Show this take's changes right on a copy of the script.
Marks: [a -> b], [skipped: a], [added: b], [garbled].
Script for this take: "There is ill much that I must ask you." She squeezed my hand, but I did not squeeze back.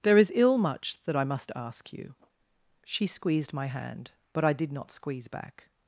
"There is ill much that I must ask you." She squeezed my hand, but I did not squeeze back.